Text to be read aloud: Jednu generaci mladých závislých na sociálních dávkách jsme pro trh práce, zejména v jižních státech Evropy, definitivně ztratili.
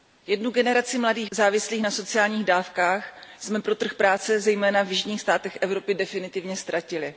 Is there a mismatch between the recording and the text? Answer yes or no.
no